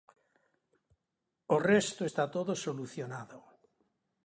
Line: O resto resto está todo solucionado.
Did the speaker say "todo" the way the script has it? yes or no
yes